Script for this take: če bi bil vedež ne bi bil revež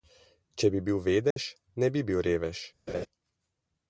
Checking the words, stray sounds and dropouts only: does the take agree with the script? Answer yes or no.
no